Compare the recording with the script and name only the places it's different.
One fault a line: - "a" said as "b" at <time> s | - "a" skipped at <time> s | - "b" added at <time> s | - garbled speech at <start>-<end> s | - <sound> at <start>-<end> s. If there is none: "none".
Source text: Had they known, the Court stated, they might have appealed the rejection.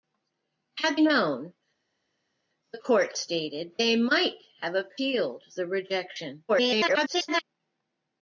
- "they" skipped at 1.0 s
- garbled speech at 6.5-7.4 s